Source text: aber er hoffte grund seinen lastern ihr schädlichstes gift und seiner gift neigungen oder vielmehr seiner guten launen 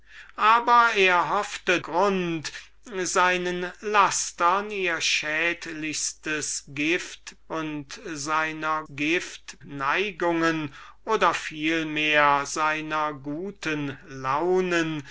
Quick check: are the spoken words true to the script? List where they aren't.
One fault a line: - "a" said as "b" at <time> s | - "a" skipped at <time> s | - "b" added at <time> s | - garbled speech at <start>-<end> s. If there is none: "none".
none